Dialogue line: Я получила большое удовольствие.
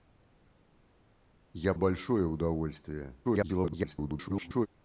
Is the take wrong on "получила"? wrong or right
wrong